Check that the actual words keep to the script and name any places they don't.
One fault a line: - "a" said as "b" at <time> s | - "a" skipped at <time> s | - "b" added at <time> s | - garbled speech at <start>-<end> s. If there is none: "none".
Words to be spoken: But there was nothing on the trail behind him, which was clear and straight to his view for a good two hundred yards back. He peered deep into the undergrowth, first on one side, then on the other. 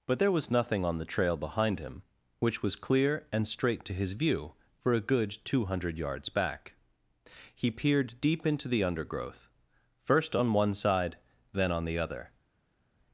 none